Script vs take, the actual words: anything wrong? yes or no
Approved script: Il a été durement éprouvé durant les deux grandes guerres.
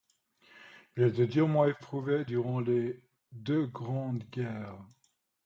no